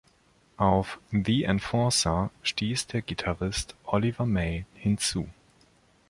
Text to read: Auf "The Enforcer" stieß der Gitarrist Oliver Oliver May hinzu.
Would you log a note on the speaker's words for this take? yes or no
yes